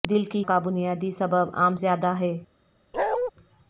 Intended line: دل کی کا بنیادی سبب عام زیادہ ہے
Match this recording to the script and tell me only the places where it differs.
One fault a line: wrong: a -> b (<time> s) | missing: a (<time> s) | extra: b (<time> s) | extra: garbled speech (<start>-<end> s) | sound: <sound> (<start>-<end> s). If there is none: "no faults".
sound: bark (2.9-3.3 s)